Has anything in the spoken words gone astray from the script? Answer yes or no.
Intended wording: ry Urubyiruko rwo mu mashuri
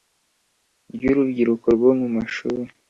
no